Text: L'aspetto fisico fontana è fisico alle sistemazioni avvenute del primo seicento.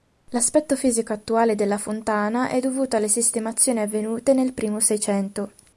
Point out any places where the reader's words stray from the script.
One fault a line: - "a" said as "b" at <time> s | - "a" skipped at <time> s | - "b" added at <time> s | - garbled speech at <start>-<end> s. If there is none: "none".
- "attuale della" added at 1.1 s
- "fisico" said as "dovuto" at 2.6 s
- "del" said as "nel" at 4.3 s